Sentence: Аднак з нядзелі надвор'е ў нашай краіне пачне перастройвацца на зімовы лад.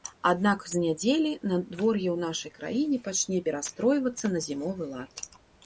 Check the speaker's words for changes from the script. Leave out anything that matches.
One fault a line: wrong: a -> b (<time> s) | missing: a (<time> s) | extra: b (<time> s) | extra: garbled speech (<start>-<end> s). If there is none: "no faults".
no faults